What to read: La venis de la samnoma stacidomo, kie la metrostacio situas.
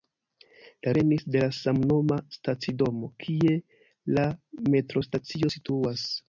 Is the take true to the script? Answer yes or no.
yes